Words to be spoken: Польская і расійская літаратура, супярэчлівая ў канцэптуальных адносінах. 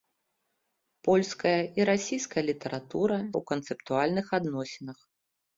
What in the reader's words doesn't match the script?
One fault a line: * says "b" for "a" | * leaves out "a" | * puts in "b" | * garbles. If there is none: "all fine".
* leaves out "супярэчлівая"